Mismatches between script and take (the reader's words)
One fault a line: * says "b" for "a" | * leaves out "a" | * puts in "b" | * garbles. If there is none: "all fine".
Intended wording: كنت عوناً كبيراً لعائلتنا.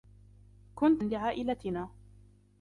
* leaves out "عوناً كبيراً"